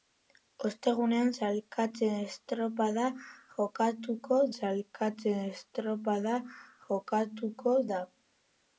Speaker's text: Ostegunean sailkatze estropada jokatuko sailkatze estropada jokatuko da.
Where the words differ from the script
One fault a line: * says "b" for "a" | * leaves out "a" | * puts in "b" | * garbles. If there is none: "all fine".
all fine